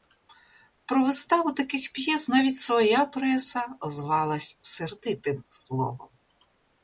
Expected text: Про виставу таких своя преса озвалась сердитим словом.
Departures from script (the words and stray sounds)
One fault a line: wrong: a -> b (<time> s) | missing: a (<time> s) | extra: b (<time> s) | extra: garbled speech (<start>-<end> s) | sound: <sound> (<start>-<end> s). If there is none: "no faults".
extra: п'єс навіть (1.9 s)